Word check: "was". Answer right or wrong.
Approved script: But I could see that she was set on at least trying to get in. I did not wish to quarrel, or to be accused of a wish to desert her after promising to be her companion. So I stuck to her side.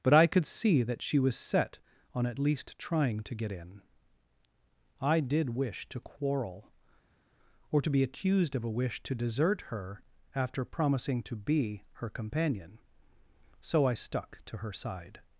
right